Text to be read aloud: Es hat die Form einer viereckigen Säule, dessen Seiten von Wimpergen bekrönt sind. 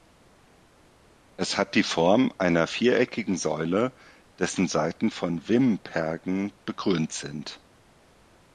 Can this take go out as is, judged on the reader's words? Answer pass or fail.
pass